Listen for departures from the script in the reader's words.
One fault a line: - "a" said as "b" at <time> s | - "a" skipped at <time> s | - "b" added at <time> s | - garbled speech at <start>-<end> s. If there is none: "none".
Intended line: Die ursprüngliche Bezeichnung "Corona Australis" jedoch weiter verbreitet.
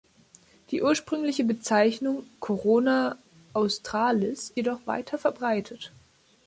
none